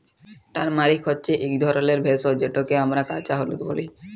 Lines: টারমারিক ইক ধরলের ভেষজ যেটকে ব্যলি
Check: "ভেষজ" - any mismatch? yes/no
no